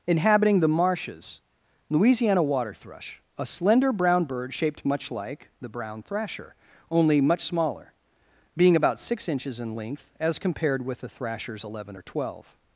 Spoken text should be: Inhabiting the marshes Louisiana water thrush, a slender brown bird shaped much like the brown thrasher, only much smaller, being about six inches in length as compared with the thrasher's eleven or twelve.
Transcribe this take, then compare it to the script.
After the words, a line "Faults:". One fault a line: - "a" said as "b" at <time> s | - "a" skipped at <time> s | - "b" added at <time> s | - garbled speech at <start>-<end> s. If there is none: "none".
Inhabiting the marshes Louisiana water thrush, a slender brown bird shaped much like the brown thrasher, only much smaller, being about six inches in length as compared with the thrasher's eleven or twelve.
Faults:
none